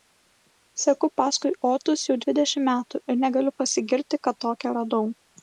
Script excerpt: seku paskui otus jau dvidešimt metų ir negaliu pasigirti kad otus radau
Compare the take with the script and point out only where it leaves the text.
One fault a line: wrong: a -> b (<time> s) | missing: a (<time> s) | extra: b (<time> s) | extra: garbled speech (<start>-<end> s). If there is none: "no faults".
wrong: otus -> tokią (4.5 s)